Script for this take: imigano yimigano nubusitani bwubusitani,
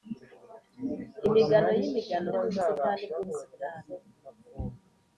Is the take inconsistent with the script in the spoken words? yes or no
no